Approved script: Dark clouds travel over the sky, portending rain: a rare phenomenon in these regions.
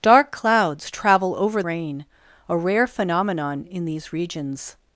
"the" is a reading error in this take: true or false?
true